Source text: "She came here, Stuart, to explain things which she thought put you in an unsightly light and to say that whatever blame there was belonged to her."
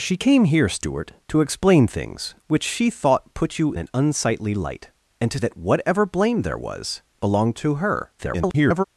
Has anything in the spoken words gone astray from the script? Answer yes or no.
yes